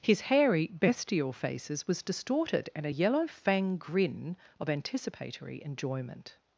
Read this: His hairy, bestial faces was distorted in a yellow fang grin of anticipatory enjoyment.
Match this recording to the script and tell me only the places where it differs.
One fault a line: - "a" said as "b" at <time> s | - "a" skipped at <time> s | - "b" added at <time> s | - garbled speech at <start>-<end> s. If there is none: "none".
none